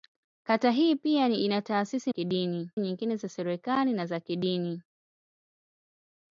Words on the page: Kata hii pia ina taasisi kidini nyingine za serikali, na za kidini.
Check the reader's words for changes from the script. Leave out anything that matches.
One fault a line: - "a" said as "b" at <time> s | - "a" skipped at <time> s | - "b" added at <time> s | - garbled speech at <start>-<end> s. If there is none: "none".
none